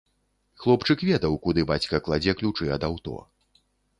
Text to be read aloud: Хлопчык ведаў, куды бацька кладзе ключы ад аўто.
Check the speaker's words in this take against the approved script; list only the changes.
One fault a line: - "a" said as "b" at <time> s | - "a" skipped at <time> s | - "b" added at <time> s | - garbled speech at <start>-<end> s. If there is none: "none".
none